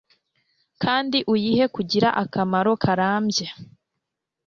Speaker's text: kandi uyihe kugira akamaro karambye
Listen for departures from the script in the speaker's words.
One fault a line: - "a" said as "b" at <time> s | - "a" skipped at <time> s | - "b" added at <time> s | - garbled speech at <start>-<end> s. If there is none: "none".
none